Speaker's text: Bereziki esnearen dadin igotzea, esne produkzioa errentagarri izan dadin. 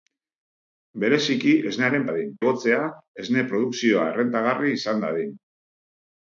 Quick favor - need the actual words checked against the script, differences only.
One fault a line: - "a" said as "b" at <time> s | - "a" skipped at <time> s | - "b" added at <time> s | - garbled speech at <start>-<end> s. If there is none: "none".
none